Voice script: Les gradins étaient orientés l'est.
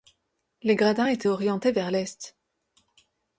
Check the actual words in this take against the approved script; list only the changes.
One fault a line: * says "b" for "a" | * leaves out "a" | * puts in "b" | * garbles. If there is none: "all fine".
* puts in "vers"